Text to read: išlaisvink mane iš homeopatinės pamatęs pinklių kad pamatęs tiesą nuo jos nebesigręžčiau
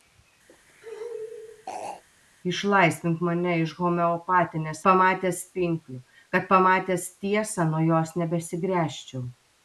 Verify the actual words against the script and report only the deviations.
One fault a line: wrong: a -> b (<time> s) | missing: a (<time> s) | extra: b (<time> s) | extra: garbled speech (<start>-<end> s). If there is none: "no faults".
no faults